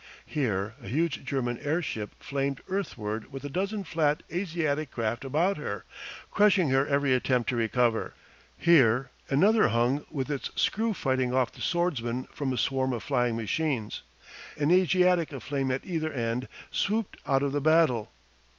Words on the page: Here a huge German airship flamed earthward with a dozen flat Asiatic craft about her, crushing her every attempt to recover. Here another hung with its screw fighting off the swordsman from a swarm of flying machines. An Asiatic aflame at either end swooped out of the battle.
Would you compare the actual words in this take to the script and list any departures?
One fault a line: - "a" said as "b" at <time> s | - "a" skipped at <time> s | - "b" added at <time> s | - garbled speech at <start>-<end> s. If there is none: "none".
none